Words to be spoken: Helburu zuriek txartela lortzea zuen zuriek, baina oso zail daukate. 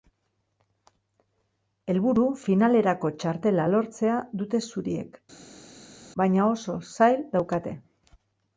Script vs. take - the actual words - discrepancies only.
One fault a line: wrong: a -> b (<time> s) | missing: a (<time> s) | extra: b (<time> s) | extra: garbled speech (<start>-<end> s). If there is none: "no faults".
wrong: zuriek -> finalerako (2.5 s)
wrong: zuen -> dute (4.4 s)